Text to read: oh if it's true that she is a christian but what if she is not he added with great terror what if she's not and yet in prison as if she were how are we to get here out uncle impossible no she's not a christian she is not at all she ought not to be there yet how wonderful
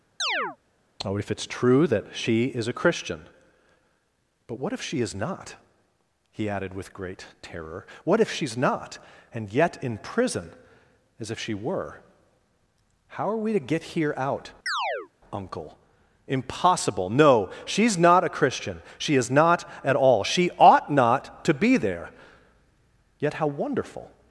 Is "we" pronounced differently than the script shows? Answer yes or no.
no